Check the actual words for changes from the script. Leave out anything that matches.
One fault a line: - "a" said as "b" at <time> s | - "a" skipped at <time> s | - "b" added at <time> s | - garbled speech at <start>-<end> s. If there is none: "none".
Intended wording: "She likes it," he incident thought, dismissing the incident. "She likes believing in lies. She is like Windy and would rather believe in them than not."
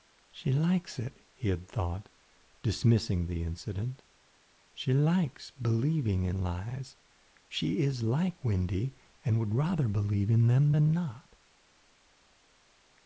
- "incident" said as "had" at 1.5 s